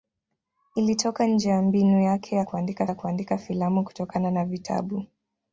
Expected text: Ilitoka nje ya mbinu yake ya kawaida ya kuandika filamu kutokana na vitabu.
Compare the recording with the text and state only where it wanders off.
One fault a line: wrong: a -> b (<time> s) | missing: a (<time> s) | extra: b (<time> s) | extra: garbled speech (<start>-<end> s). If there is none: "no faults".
wrong: kawaida -> kuandika (2.4 s)